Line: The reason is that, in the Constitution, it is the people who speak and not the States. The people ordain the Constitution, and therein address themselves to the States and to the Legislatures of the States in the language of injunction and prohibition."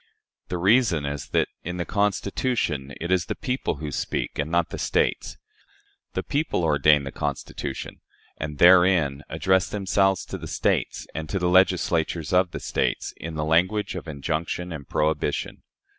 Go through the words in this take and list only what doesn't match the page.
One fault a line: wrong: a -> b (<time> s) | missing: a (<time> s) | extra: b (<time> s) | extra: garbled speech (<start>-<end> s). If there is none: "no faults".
no faults